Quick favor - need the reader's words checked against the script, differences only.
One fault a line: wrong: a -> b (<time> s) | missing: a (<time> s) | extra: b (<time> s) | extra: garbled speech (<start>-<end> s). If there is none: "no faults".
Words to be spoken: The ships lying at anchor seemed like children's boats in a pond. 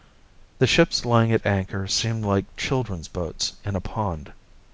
no faults